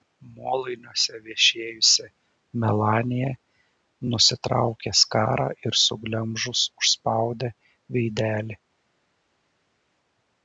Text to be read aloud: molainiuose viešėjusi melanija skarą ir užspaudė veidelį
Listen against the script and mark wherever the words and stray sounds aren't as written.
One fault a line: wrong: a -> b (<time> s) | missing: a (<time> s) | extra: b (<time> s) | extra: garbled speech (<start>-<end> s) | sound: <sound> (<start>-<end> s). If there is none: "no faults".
extra: nusitraukė (4.1 s)
extra: suglemžus (5.9 s)